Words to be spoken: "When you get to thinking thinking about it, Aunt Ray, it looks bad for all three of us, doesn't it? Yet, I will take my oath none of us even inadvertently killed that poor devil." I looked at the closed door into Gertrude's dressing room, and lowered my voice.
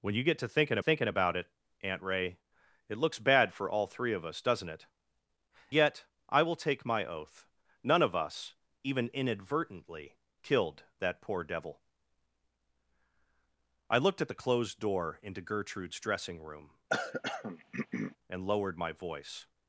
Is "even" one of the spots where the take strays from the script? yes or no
no